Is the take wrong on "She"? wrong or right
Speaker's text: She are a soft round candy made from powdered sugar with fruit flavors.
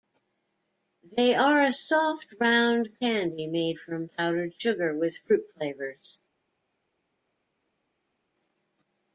wrong